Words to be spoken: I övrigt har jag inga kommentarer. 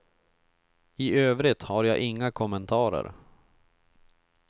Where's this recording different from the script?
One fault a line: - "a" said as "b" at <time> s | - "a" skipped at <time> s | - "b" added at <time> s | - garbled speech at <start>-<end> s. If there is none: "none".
none